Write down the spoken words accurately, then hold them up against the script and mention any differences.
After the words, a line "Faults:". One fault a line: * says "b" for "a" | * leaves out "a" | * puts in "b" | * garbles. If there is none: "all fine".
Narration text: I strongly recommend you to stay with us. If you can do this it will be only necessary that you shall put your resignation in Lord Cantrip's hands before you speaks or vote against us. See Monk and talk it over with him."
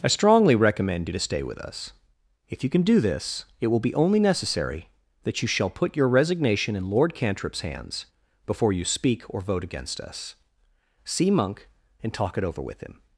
I strongly recommend you to stay with us. If you can do this it will be only necessary that you shall put your resignation in Lord Cantrip's hands before you speak or vote against us. See Monk and talk it over with him."
Faults:
* says "speak" for "speaks"